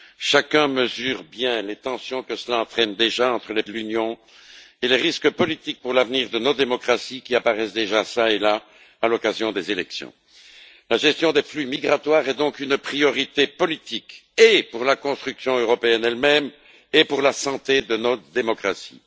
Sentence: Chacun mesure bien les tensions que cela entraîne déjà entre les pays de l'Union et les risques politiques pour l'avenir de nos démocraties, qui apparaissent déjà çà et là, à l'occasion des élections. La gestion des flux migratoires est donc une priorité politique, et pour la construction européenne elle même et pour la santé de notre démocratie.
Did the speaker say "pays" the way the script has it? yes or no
no